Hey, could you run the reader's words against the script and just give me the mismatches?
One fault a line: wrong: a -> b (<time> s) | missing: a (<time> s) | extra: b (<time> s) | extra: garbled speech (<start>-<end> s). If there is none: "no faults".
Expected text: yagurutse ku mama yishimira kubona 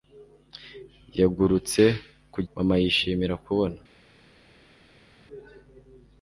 no faults